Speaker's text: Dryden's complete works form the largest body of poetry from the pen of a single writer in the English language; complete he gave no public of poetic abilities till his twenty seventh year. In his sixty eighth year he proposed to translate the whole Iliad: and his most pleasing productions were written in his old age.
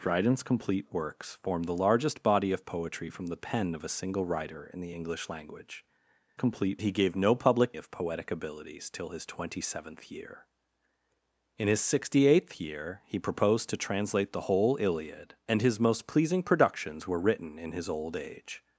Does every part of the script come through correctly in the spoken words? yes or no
yes